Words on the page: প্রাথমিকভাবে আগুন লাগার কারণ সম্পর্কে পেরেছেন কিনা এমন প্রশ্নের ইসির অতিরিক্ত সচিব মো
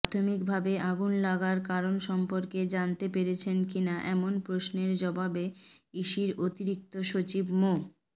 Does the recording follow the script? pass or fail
fail